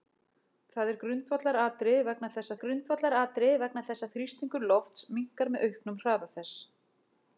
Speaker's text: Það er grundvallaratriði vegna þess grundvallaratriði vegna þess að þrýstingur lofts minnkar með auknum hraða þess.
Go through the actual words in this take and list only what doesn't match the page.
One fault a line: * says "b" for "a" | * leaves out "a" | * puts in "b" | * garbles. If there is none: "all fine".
all fine